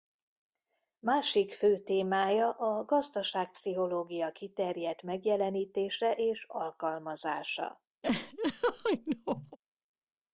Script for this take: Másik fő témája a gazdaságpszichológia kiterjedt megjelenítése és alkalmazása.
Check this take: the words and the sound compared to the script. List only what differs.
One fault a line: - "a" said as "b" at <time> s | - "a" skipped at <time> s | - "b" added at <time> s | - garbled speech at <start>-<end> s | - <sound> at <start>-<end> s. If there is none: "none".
- laugh at 8.0-9.6 s